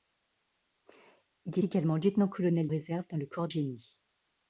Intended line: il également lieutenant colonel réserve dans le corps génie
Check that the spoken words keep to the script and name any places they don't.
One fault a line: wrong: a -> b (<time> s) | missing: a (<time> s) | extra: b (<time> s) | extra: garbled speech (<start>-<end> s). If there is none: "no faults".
no faults